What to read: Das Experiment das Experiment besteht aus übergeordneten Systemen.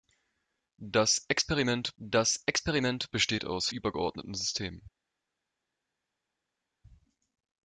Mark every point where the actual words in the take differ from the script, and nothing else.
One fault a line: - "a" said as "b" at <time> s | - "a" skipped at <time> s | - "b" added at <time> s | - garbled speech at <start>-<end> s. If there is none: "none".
none